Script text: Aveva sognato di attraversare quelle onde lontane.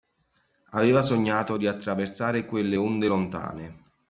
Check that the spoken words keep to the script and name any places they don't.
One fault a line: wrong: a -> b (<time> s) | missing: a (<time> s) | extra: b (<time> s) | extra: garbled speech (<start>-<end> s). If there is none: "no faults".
no faults